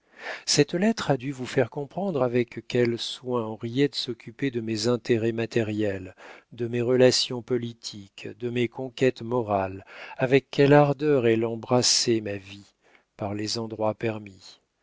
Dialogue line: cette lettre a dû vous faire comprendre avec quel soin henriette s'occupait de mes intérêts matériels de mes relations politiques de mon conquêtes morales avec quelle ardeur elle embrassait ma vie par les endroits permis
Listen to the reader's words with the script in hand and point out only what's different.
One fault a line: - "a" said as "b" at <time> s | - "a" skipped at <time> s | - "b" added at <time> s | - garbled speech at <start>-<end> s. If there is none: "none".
- "mon" said as "mes" at 8.5 s